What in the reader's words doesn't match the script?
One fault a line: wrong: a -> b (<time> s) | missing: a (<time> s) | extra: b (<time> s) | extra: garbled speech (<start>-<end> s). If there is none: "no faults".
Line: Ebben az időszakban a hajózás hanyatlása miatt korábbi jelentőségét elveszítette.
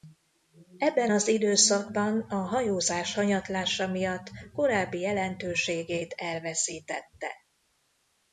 no faults